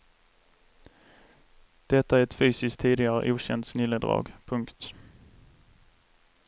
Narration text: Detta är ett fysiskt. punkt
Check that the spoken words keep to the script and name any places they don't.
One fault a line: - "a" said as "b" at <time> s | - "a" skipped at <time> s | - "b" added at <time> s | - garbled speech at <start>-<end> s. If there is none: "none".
- "tidigare okänt snilledrag" added at 2.8 s